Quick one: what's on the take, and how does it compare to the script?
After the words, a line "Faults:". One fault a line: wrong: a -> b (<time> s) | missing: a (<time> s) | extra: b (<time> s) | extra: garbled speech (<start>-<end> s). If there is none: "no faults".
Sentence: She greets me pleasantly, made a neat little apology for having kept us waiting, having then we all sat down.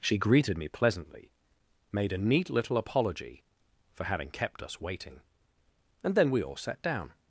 She greeted me pleasantly, made a neat little apology for having kept us waiting, and then we all sat down.
Faults:
wrong: greets -> greeted (0.2 s)
wrong: having -> and (6.0 s)